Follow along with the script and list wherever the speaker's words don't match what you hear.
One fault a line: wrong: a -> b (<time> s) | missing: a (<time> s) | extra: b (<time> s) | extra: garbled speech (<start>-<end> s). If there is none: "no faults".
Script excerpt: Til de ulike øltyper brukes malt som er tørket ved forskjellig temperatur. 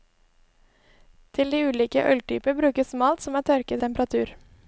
missing: ved forskjellig (3.8 s)